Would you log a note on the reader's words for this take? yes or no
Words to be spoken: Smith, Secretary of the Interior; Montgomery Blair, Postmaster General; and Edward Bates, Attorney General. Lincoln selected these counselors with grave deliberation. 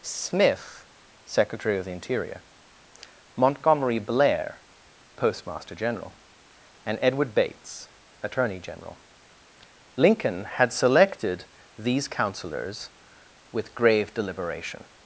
yes